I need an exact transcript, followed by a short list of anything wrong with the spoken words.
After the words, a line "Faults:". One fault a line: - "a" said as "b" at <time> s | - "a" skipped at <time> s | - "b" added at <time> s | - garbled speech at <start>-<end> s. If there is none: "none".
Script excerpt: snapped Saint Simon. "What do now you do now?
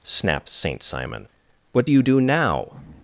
snapped Saint Simon. "What do you do now?
Faults:
- "now" skipped at 1.9 s